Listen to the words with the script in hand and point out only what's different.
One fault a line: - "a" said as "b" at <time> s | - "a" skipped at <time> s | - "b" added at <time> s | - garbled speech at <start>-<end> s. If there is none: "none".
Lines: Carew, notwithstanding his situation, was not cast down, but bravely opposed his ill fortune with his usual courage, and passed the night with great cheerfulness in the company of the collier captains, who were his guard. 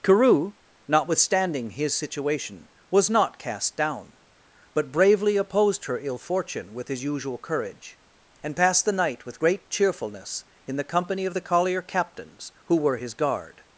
- "his" said as "her" at 5.8 s